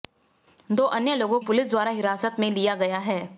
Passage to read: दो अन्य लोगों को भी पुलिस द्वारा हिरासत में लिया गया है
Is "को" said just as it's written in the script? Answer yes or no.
no